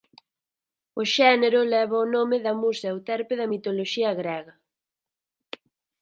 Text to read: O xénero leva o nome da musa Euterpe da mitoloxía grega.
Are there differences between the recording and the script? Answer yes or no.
no